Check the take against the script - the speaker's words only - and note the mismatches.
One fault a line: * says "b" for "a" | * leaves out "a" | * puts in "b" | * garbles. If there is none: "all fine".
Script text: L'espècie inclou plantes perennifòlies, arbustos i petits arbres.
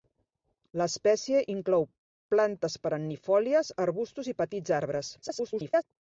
* garbles